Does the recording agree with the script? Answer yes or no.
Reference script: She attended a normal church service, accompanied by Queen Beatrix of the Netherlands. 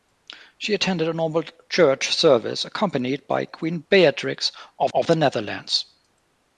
no